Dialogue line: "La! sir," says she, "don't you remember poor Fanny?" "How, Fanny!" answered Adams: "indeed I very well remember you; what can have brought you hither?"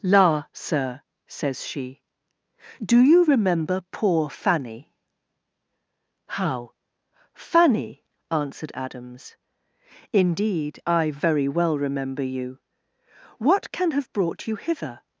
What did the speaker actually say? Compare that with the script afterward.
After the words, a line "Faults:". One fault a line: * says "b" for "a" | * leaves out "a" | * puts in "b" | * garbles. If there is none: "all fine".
"La! sir," says she, "do you remember poor Fanny?" "How, Fanny!" answered Adams: "indeed I very well remember you; what can have brought you hither?"
Faults:
* says "do" for "don't"